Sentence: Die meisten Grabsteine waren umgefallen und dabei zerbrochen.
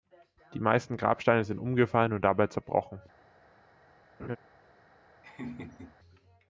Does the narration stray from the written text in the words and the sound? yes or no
yes